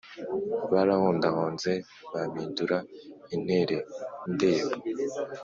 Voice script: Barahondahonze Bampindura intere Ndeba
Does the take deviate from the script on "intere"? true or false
false